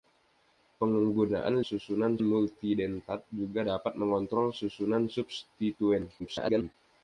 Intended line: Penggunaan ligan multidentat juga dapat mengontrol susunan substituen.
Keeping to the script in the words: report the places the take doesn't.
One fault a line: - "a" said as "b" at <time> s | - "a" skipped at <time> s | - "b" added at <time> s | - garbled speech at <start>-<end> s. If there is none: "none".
- "ligan" said as "susunan" at 1.6 s
- garbled speech at 6.2-6.7 s